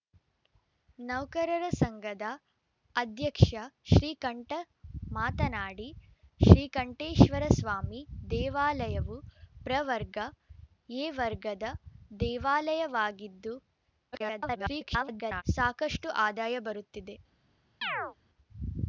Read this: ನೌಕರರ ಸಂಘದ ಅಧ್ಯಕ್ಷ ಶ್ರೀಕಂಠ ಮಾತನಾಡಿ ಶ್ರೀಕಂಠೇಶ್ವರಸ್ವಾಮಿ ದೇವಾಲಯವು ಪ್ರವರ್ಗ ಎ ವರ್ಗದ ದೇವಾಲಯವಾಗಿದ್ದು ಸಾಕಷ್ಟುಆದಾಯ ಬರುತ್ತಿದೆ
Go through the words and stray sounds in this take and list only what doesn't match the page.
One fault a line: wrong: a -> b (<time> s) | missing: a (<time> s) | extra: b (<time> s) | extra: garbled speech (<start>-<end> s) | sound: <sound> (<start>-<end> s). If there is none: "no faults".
extra: garbled speech (14.1-15.4 s)
sound: chirp (17.8-18.2 s)